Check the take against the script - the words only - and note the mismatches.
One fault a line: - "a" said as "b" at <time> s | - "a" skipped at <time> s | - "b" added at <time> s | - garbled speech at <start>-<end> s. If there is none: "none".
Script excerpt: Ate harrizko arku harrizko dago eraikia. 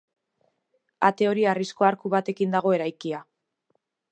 - "hori" added at 1.3 s
- "harrizko" said as "batekin" at 2.1 s